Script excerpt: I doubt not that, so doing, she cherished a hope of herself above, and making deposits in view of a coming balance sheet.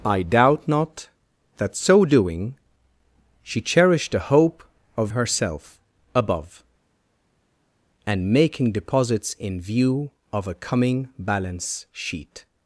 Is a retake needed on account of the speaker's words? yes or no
no